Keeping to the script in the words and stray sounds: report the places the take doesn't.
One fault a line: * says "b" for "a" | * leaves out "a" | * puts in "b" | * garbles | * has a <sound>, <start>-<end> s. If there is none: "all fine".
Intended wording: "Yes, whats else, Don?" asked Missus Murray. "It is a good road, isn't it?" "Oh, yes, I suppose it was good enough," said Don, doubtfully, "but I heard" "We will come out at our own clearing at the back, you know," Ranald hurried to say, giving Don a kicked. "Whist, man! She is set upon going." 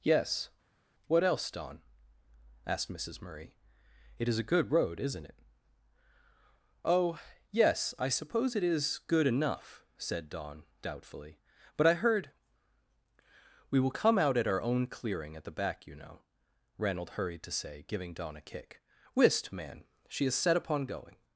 * says "what" for "whats"
* says "is" for "was"
* says "kick" for "kicked"